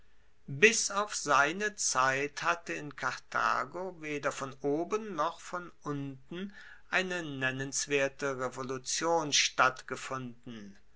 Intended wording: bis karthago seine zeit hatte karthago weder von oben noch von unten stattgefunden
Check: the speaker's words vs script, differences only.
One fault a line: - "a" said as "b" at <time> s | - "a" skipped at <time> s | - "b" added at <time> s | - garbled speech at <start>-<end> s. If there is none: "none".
- "karthago" said as "auf" at 0.9 s
- "in" added at 2.7 s
- "eine nennenswerte revolution" added at 6.9 s